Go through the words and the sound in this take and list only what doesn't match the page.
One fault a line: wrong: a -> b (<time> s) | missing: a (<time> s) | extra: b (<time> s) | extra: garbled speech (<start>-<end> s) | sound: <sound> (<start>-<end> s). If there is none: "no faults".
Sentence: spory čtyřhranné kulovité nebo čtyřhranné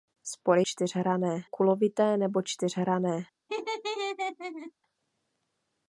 sound: laugh (3.5-4.7 s)